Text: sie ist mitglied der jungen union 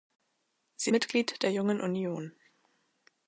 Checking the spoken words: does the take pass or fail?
fail